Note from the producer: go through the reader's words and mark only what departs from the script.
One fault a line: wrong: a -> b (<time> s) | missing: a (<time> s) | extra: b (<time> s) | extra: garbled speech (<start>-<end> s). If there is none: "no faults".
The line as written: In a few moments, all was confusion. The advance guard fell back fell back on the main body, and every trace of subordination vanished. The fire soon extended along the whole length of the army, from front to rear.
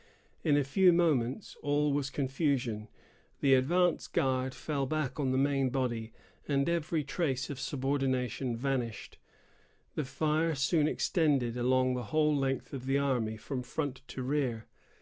missing: fell back (5.2 s)